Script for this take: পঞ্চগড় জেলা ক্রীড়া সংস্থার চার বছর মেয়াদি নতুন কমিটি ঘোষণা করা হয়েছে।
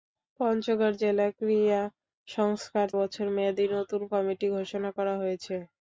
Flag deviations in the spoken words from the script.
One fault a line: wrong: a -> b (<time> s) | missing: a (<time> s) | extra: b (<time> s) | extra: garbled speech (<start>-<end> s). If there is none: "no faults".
missing: চার (2.9 s)